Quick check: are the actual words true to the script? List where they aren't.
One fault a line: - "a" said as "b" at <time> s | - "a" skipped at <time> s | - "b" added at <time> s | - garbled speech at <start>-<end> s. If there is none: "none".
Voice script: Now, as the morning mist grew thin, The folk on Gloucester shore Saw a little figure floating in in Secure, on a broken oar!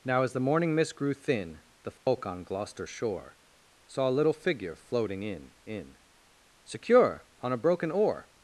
none